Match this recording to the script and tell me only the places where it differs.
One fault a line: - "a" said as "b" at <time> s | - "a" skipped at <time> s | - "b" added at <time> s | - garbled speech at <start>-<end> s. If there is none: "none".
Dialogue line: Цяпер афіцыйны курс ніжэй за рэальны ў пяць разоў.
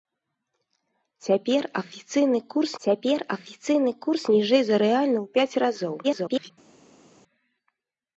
- "цяпер афіцыйны курс" added at 2.8 s
- garbled speech at 6.0-6.5 s